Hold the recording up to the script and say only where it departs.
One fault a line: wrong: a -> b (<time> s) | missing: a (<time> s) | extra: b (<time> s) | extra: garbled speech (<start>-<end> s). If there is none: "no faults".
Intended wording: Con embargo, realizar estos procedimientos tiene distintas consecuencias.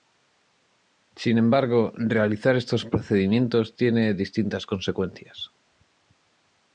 wrong: Con -> Sin (1.1 s)